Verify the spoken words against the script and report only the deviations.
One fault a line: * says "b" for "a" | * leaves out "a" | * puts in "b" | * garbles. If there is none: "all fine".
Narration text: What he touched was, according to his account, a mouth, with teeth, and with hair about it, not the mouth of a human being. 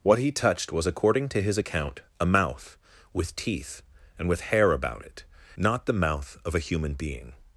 all fine